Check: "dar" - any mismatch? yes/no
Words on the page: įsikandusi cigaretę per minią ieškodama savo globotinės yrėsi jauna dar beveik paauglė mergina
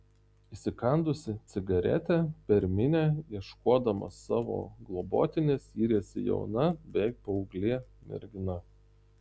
yes